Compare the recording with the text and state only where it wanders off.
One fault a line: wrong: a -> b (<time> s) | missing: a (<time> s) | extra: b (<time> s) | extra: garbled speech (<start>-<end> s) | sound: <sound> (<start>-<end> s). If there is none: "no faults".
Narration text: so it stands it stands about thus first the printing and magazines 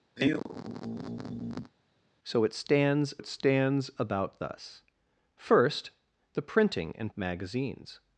sound: sigh (0.2-1.7 s)